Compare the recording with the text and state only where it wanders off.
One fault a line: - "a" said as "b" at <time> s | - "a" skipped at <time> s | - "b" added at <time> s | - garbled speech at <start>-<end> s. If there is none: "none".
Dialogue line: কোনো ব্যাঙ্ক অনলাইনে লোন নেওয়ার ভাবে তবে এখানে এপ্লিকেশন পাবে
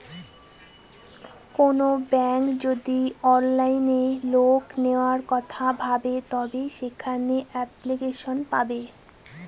- "যদি" added at 2.6 s
- "কথা" added at 5.3 s
- "এখানে" said as "সেখানে" at 6.8 s